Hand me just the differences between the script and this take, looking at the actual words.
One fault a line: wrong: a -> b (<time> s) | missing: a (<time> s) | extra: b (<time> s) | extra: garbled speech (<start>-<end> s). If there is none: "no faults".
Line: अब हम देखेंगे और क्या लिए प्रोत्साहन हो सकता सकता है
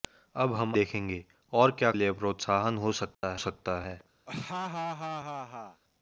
no faults